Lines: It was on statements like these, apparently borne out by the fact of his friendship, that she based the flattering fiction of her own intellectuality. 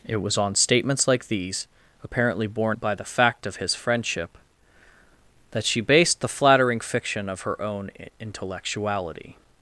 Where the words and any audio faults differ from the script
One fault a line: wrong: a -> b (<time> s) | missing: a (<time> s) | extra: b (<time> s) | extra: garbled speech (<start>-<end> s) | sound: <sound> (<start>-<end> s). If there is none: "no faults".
missing: out (2.8 s)